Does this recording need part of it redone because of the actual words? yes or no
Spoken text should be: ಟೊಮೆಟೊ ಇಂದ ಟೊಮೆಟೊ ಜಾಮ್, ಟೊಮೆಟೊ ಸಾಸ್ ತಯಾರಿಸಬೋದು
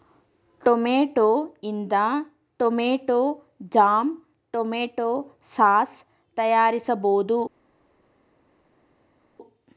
no